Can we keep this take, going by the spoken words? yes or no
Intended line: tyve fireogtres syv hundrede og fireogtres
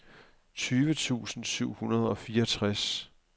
no